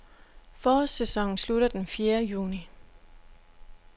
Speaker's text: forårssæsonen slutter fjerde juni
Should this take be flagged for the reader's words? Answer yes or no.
yes